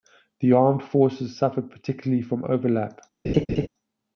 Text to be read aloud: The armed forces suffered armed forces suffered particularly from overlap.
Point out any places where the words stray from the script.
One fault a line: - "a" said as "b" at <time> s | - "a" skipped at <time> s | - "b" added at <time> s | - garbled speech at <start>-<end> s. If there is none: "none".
- "armed forces suffered" skipped at 1.7 s